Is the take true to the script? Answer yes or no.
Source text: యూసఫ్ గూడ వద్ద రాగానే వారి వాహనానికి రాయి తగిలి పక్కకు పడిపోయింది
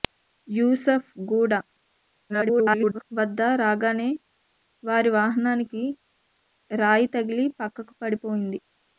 no